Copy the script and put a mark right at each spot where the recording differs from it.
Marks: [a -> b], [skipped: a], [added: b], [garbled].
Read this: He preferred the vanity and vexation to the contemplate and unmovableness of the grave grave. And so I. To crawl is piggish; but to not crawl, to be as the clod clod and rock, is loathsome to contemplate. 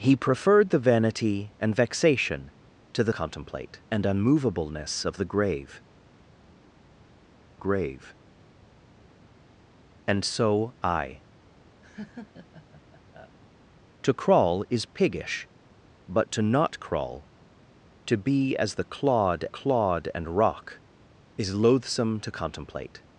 He preferred the vanity and vexation to the contemplate and unmovableness of the grave grave. And so I. To crawl is piggish; but to not crawl, to be as the clod clod and rock, is loathsome to contemplate.